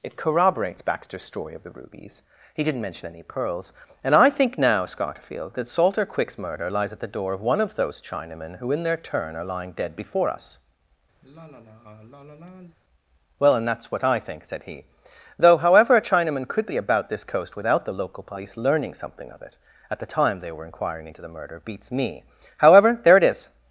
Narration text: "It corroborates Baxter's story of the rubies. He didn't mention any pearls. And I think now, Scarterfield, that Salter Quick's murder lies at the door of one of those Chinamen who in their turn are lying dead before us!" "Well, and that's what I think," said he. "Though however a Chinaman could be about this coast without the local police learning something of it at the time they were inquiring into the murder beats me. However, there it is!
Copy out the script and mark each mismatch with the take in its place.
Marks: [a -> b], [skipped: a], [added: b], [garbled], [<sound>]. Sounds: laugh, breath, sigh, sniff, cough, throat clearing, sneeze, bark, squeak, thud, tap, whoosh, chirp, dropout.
"It corroborates Baxter's story of the rubies. He didn't mention any pearls. And I think now, Scarterfield, that Salter Quick's murder lies at the door of one of those Chinamen who in their turn are lying dead before us!" [sigh] "Well, and that's what I think," said he. "Though however a Chinaman could be about this coast without the local police learning something of it at the time they were inquiring into the murder beats me. However, there it is!